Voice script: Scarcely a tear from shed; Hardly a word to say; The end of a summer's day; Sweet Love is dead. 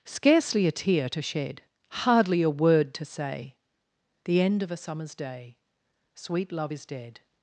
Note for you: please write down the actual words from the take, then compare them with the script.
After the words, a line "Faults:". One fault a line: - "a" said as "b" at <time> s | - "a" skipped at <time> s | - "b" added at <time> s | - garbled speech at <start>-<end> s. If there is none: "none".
Scarcely a tear to shed; Hardly a word to say; The end of a summer's day; Sweet Love is dead.
Faults:
- "from" said as "to" at 1.1 s